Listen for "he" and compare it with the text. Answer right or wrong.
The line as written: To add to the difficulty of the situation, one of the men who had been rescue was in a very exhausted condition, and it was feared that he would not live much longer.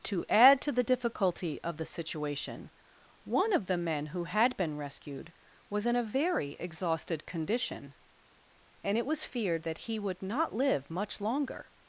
right